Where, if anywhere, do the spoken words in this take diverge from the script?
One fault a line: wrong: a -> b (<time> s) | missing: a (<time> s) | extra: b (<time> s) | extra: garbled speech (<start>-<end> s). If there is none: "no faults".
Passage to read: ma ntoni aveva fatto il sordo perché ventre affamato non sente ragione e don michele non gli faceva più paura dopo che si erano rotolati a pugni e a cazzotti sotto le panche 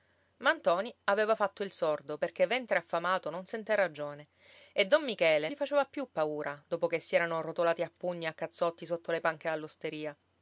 missing: non (5.5 s)